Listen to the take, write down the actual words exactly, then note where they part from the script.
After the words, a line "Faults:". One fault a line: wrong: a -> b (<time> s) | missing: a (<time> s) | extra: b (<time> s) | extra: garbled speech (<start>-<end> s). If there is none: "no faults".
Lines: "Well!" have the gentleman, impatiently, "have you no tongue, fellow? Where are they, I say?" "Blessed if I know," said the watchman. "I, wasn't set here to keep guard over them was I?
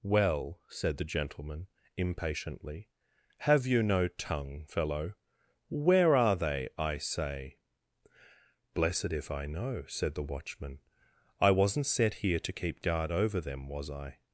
"Well!" said the gentleman, impatiently, "have you no tongue, fellow? Where are they, I say?" "Blessed if I know," said the watchman. "I, wasn't set here to keep guard over them was I?
Faults:
wrong: have -> said (0.7 s)